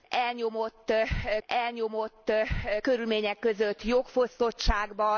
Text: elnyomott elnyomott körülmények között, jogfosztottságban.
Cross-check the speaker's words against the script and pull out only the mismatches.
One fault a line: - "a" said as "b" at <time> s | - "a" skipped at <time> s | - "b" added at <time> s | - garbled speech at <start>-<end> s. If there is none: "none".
none